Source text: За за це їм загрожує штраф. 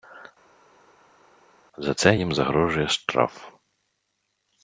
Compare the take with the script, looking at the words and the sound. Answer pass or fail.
fail